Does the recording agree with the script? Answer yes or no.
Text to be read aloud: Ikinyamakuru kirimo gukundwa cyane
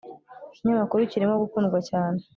yes